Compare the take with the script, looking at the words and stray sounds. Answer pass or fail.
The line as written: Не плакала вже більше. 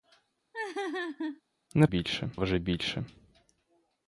fail